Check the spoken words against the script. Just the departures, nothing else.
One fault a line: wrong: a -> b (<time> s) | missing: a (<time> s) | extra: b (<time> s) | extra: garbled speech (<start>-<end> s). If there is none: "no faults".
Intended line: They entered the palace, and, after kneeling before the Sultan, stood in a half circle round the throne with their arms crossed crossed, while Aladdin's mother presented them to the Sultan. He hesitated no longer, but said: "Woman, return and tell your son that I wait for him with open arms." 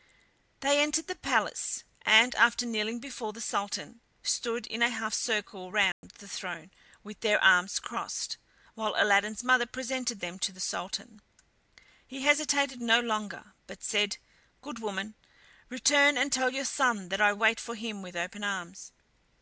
missing: crossed (8.4 s)
extra: Good (14.6 s)